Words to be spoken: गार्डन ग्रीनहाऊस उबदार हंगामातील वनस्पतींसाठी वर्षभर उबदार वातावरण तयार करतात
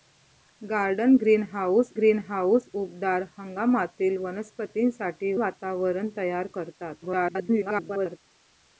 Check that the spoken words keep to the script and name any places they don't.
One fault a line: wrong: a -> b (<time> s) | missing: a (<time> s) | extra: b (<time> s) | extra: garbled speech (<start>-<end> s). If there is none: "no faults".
extra: ग्रीनहाऊस (1.9 s)
missing: वर्षभर उबदार (5.3 s)
extra: garbled speech (7.0-8.2 s)